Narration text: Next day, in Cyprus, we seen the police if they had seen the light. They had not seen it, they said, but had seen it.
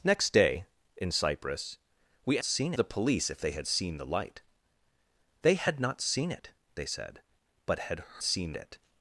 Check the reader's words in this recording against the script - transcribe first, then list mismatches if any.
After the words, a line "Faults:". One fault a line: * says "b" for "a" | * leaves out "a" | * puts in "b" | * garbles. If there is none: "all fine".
Next day, in Cyprus, we seen the police if they had seen the light. They had not seen it, they said, but had seen it.
Faults:
all fine